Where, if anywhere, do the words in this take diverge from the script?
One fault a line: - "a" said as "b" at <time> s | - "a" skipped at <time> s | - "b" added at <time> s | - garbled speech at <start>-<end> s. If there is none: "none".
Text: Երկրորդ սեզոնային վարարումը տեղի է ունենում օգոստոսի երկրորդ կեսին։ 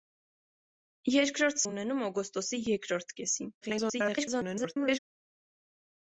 - "սեզոնային վարարումը տեղի" skipped at 1.6 s
- garbled speech at 3.6-5.0 s